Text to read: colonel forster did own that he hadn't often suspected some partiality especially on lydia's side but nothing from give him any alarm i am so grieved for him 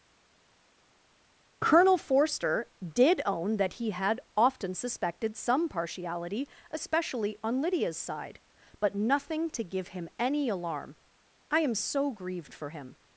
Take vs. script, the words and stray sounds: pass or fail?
fail